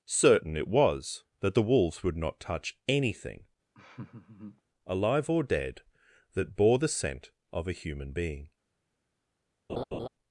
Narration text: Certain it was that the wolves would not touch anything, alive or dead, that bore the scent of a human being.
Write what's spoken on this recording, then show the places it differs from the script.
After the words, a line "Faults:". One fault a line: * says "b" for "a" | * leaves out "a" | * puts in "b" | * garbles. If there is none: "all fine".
Certain it was that the wolves would not touch anything, alive or dead, that bore the scent of a human being.
Faults:
all fine